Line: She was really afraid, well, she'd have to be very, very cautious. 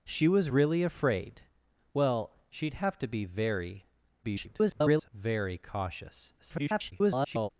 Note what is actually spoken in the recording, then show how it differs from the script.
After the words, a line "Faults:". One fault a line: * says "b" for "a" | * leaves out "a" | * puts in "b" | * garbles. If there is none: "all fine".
She was really afraid, well, she'd have to be very, [garbled] very cautious. [garbled]
Faults:
* garbles
* garbles